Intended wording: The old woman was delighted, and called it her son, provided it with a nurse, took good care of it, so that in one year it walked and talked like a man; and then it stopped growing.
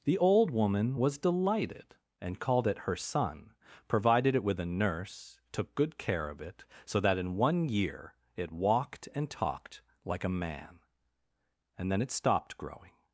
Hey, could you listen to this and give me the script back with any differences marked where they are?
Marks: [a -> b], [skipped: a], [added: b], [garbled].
The old woman was delighted, and called it her son, provided it with a nurse, took good care of it, so that in one year it walked and talked like a man; and then it stopped growing.